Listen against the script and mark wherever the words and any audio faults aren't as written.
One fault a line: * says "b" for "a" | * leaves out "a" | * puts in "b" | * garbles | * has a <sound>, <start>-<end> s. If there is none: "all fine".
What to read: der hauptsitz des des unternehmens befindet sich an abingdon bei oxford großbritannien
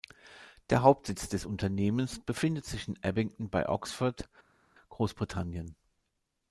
* leaves out "des"
* says "in" for "an"